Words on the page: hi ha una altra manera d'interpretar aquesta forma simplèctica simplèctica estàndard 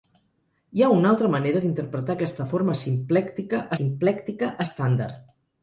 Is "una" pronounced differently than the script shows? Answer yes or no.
no